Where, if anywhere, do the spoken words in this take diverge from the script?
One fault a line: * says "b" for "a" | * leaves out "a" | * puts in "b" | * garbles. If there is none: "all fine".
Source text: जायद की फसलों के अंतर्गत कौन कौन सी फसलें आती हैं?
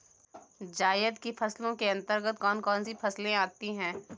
all fine